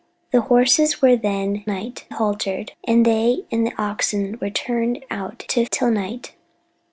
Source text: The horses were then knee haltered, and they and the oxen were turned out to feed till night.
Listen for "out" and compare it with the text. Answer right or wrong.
right